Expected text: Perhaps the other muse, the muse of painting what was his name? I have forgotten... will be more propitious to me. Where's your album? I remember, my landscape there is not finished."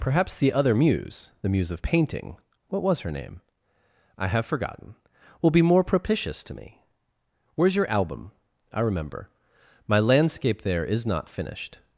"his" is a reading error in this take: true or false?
true